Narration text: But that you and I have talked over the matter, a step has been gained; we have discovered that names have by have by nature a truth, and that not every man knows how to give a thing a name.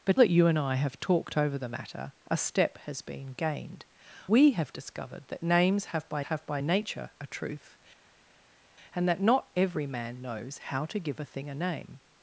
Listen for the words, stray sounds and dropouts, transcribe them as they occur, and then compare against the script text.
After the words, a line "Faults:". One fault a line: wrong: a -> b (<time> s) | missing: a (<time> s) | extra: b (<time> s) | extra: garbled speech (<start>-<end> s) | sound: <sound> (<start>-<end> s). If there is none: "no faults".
But that you and I have talked over the matter, a step has been gained; we have discovered that names have by have by nature a truth, and that not every man knows how to give a thing a name.
Faults:
no faults